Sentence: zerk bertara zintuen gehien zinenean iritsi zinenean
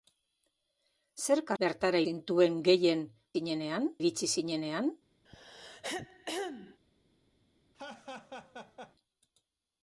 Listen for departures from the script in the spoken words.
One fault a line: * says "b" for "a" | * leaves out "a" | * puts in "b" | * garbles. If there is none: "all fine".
all fine